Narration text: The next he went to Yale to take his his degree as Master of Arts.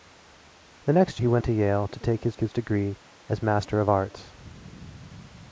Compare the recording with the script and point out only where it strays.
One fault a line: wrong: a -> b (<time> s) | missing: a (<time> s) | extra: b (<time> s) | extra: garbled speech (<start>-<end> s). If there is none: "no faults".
no faults